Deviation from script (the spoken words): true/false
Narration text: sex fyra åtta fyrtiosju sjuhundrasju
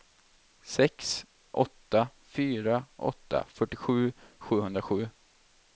true